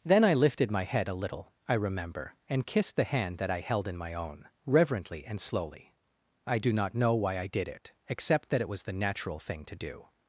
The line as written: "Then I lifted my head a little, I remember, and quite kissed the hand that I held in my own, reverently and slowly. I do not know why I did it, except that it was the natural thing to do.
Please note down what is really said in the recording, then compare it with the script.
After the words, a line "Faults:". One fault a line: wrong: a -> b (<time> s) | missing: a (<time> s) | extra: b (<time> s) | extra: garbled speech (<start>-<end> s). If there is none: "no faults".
"Then I lifted my head a little, I remember, and kissed the hand that I held in my own, reverently and slowly. I do not know why I did it, except that it was the natural thing to do.
Faults:
missing: quite (2.6 s)